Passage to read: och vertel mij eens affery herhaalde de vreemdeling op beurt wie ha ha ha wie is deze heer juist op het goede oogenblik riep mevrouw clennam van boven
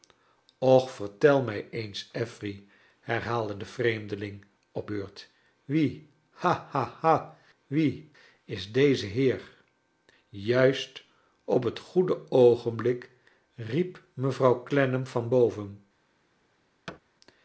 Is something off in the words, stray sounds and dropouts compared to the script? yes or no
yes